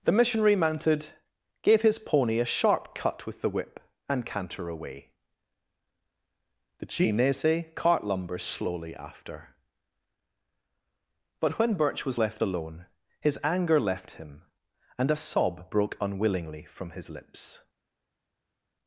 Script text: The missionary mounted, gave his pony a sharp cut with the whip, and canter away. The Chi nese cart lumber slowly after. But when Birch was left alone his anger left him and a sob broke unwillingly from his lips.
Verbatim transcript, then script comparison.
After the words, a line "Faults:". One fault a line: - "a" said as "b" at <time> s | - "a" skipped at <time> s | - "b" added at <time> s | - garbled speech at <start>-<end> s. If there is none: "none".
The missionary mounted, gave his pony a sharp cut with the whip, and canter away. The Chi nese cart lumber slowly after. But when Birch was left alone his anger left him and a sob broke unwillingly from his lips.
Faults:
none